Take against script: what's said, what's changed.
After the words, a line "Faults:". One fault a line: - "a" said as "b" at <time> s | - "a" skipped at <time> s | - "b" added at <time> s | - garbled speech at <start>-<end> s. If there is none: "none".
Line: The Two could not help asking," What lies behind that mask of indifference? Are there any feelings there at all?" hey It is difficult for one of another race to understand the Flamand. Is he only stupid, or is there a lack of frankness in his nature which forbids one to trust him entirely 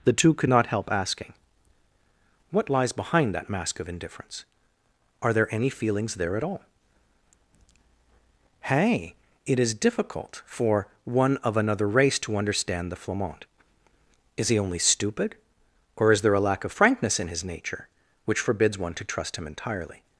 The Two could not help asking," What lies behind that mask of indifference? Are there any feelings there at all?" hey It is difficult for one of another race to understand the Flamand. Is he only stupid, or is there a lack of frankness in his nature which forbids one to trust him entirely
Faults:
none